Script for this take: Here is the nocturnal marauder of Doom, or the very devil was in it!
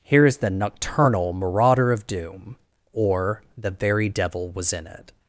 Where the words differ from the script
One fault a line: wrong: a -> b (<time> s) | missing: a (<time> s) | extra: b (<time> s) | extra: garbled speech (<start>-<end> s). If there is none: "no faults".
no faults